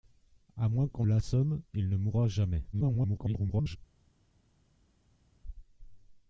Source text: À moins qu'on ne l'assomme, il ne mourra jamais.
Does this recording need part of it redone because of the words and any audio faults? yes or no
yes